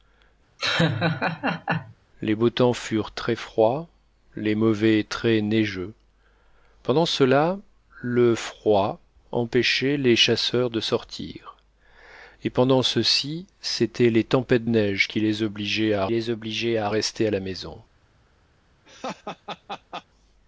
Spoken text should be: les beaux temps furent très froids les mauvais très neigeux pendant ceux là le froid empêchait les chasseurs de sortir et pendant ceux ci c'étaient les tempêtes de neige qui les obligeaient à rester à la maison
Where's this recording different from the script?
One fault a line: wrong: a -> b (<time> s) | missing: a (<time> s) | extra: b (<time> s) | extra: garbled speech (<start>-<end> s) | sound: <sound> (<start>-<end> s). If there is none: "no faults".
sound: laugh (0.6-1.9 s)
missing: de (14.6 s)
extra: les obligeaient à (16.1 s)
sound: laugh (18.8-20.0 s)